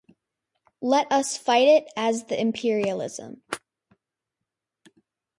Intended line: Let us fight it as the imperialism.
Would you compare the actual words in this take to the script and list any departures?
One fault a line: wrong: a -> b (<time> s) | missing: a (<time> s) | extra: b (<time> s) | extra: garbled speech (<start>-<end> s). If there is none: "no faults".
no faults